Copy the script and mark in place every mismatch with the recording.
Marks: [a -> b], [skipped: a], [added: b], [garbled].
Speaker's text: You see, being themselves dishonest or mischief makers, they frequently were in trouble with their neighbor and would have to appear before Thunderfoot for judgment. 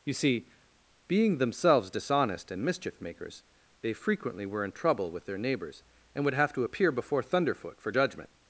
You see, being themselves dishonest [or -> and] mischief makers, they frequently were in trouble with their [neighbor -> neighbors] and would have to appear before Thunderfoot for judgment.